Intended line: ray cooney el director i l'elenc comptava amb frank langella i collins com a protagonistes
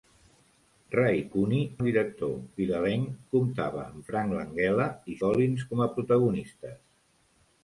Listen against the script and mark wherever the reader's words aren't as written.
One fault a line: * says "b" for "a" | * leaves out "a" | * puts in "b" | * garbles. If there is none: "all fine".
all fine